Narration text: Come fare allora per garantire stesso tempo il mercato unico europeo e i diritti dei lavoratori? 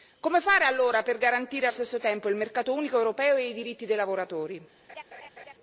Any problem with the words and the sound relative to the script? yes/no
yes